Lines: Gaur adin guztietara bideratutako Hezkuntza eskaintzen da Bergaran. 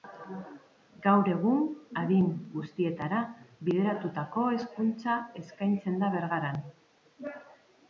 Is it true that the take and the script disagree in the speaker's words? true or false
true